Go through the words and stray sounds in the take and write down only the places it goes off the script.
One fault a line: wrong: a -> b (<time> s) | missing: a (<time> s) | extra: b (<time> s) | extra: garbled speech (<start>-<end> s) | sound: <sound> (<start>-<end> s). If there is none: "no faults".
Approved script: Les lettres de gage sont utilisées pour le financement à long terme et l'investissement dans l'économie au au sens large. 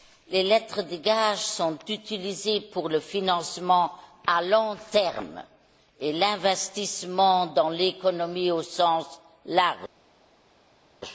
missing: au (8.6 s)